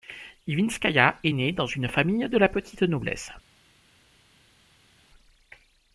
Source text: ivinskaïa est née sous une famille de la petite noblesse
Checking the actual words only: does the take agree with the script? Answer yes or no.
no